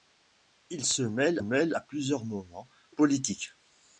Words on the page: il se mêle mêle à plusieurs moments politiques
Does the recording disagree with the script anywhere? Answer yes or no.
no